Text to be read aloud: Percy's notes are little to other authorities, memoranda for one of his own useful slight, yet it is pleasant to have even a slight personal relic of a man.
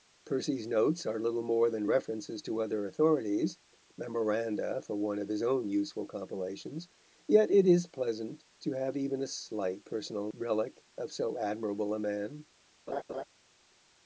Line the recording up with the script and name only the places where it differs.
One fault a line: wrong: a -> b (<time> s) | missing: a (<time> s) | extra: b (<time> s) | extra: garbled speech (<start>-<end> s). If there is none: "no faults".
extra: more than references (1.4 s)
wrong: slight -> compilations (6.1 s)
extra: so admirable (11.1 s)